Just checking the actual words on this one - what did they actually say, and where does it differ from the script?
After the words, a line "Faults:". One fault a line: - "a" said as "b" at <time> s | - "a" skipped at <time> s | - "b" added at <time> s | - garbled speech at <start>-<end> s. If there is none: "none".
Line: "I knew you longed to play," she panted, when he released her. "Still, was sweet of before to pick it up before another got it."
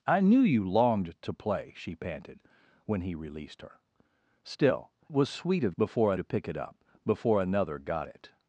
"I knew you longed to play," she panted, when he released her. "Still, was sweet of before to pick it up before another got it."
Faults:
none